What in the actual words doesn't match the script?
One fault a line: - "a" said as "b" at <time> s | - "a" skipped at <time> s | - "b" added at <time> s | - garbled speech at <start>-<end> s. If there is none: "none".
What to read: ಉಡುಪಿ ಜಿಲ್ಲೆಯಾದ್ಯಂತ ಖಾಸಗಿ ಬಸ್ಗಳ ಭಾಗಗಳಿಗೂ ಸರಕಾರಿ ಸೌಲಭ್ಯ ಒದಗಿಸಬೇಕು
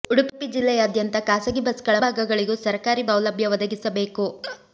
none